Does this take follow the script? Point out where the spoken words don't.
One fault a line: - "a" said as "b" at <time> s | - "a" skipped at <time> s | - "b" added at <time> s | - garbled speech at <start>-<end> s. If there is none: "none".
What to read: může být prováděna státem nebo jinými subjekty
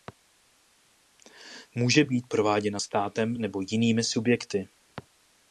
none